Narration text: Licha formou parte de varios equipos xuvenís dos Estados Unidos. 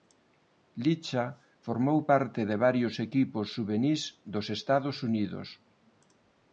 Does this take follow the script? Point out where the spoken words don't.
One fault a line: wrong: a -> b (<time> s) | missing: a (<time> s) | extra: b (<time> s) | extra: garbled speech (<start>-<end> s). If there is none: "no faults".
no faults